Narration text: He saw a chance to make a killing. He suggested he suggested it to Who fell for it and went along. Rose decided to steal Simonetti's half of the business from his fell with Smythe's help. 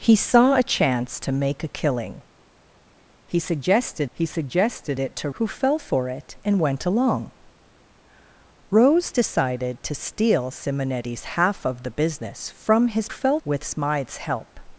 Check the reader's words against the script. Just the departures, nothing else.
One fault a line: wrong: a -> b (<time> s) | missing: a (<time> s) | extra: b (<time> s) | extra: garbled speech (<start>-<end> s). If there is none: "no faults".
no faults